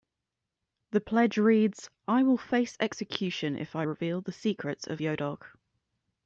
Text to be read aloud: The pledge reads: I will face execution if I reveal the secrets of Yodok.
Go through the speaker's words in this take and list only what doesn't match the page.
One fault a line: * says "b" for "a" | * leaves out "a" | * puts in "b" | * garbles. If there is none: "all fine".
all fine